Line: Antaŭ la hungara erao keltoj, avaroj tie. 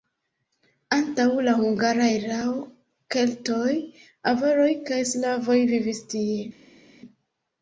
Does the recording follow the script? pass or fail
fail